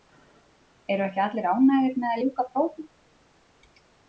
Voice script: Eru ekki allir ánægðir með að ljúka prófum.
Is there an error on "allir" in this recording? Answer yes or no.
no